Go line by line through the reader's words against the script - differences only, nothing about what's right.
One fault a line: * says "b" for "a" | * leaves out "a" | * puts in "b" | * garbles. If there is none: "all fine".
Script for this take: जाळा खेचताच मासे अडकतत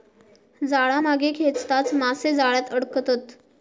* puts in "मागे"
* puts in "जाळ्यात"